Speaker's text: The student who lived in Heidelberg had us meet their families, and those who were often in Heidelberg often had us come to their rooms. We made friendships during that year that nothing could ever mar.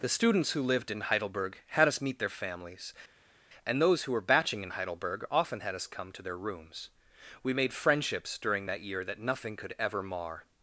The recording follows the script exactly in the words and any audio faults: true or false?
false